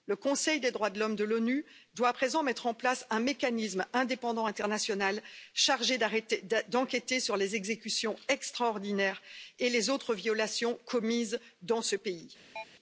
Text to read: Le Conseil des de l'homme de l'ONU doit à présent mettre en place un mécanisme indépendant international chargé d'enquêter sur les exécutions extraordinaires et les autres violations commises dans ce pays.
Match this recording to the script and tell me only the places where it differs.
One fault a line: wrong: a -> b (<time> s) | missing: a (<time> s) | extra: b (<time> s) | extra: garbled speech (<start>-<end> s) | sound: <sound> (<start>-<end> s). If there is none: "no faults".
extra: droits (0.7 s)
sound: chirp (12.6-12.6 s)